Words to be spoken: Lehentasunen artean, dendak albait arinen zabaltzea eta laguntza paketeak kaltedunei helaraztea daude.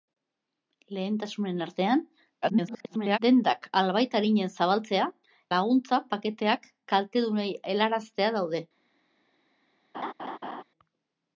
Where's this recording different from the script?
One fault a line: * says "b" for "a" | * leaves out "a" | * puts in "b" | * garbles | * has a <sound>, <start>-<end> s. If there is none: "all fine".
* garbles
* leaves out "eta"
* has a laugh, 9.9-10.6 s